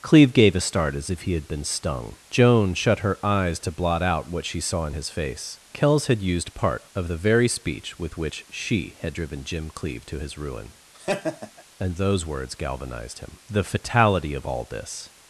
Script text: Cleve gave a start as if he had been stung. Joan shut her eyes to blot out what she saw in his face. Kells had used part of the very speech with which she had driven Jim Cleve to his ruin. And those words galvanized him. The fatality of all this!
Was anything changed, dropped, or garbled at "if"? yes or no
no